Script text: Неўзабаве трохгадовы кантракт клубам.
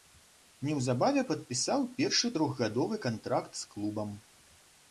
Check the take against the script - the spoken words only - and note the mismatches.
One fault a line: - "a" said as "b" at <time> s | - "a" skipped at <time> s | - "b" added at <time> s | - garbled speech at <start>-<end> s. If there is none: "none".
- "падпісаў першы" added at 1.3 s
- "з" added at 3.6 s